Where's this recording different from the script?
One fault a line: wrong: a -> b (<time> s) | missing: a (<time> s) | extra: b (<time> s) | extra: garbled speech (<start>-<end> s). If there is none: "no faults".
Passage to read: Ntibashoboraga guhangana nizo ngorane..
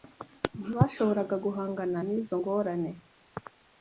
no faults